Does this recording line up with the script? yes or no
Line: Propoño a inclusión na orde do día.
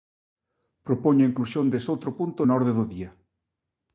no